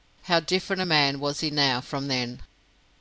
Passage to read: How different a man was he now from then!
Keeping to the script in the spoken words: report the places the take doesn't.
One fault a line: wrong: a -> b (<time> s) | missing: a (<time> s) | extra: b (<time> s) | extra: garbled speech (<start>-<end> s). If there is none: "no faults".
no faults